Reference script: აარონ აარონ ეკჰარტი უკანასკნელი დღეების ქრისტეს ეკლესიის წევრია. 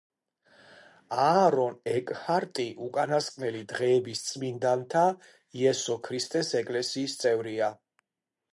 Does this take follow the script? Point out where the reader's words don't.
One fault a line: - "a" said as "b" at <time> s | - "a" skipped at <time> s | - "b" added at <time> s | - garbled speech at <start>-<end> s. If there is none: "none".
- "აარონ" skipped at 1.8 s
- "წმინდანთა იესო" added at 4.3 s